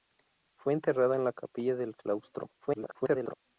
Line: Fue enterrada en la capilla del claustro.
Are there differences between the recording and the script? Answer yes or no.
yes